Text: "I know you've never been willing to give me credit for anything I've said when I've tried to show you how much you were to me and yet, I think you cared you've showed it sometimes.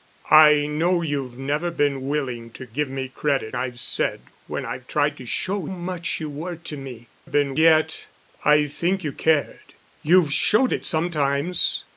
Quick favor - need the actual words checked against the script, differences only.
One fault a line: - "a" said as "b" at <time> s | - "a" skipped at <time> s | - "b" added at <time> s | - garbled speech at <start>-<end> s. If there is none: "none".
- "for anything" skipped at 3.5 s
- "you how" skipped at 5.6 s
- "and" said as "been" at 7.2 s